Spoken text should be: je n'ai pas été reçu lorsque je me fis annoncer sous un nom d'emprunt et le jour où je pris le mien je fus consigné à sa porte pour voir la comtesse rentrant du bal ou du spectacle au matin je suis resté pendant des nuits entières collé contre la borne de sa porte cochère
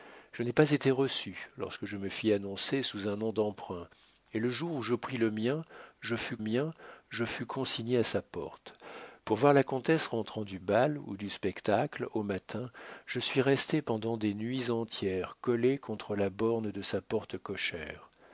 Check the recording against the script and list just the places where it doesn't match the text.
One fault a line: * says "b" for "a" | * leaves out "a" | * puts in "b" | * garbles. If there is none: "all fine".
* puts in "mien je fus"